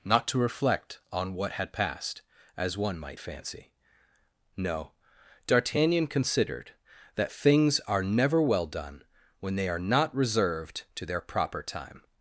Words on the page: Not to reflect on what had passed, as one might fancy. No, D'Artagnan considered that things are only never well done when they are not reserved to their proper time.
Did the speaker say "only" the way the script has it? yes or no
no